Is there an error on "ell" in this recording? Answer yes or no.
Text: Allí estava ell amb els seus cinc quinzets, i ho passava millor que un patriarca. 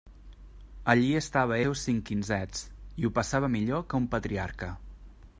yes